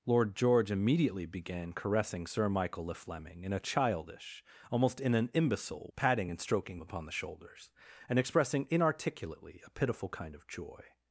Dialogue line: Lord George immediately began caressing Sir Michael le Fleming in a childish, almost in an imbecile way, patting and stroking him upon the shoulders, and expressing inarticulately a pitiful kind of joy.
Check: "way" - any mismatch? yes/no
yes